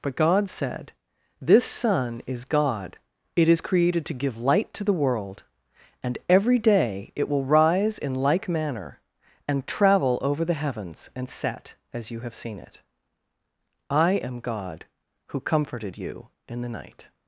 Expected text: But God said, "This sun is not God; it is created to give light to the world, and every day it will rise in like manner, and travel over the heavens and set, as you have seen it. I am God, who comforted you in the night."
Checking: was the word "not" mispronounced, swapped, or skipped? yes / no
yes